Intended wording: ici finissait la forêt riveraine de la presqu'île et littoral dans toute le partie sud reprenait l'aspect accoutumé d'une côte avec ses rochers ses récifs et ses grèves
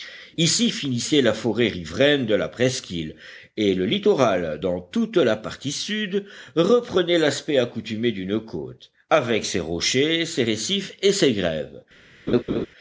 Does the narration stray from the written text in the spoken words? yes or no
yes